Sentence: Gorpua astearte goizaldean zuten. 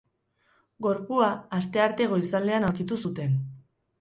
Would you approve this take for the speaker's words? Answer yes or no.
no